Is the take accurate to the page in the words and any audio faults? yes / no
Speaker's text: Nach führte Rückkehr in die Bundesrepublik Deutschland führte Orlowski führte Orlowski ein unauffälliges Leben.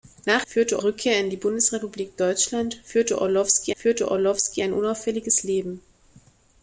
yes